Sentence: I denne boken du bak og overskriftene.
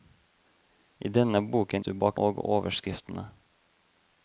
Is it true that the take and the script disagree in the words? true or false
false